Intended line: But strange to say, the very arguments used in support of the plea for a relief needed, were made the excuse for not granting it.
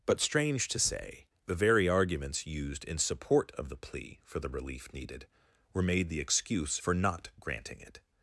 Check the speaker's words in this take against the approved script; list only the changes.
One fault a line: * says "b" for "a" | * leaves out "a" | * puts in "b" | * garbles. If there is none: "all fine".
* says "the" for "a"